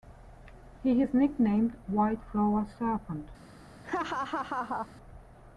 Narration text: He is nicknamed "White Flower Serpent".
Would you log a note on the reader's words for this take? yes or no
no